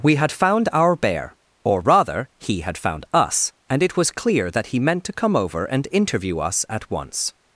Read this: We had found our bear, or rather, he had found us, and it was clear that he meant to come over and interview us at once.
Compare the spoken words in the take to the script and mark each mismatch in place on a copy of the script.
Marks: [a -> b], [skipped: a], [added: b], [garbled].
We had found our bear, or rather, he had found us, and it was clear that he meant to come over and interview us at once.